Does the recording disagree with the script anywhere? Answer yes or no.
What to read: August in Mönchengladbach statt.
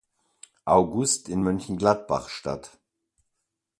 no